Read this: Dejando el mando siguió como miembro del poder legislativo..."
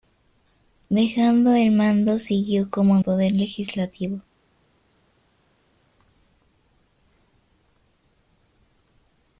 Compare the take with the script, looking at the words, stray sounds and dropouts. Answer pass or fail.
fail